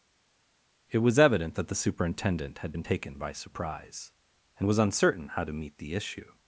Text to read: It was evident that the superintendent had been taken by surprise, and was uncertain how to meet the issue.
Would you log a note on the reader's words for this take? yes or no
no